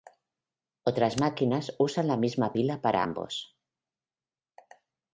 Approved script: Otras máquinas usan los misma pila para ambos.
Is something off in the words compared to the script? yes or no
yes